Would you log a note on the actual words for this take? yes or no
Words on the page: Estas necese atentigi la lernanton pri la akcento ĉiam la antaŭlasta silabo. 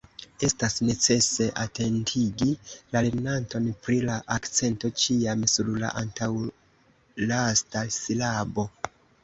yes